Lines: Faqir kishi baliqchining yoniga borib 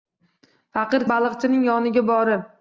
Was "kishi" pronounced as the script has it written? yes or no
no